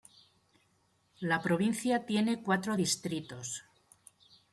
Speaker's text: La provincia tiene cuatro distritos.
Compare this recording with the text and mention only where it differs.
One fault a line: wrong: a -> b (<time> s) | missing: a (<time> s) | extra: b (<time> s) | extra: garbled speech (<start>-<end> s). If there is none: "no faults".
no faults